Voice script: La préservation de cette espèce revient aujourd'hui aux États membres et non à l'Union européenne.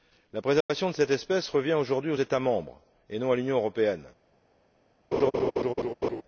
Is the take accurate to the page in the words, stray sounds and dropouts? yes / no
no